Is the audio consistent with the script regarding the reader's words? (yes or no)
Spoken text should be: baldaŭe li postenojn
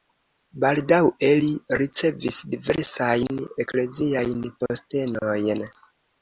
no